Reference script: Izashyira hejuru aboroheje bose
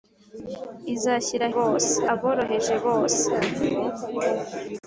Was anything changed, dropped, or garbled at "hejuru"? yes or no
yes